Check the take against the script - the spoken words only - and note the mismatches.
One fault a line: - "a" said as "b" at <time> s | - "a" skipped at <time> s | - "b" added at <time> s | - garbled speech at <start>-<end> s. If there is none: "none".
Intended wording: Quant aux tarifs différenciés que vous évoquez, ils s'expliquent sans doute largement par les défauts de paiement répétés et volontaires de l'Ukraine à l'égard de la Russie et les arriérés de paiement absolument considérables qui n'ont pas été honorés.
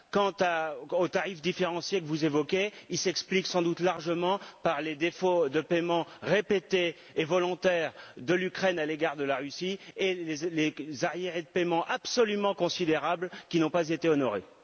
none